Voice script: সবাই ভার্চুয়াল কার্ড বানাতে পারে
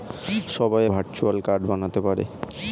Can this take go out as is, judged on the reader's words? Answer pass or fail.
pass